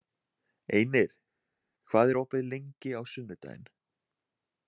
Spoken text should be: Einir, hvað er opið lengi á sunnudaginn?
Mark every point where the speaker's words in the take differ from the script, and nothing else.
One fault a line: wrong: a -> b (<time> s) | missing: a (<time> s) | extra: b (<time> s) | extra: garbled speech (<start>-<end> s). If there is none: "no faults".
no faults